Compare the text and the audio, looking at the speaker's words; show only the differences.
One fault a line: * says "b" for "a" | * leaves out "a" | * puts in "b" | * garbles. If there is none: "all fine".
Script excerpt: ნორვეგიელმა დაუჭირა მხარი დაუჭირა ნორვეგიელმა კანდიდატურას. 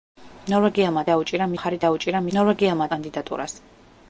all fine